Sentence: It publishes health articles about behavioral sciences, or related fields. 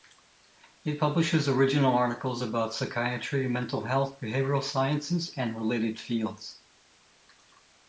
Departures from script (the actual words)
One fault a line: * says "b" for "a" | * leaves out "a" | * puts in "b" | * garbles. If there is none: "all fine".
* says "original" for "health"
* puts in "psychiatry mental health"
* says "and" for "or"